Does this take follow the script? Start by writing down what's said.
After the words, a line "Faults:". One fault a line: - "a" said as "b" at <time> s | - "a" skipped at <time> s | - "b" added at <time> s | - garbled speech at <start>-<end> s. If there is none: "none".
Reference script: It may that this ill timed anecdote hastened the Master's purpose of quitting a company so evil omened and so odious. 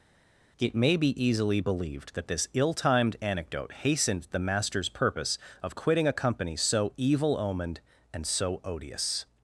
It may be easily believed that this ill timed anecdote hastened the Master's purpose of quitting a company so evil omened and so odious.
Faults:
- "be easily believed" added at 0.9 s